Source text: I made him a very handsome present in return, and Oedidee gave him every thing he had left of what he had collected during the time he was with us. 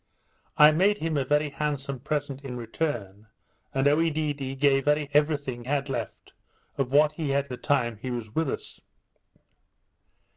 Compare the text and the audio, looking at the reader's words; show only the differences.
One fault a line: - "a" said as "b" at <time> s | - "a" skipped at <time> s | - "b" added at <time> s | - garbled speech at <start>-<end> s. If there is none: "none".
- "him" said as "very" at 4.8 s
- "he" skipped at 5.6 s
- "collected during" skipped at 7.5 s